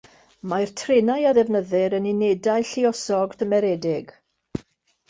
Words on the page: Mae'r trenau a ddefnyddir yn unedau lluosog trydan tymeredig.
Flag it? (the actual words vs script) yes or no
yes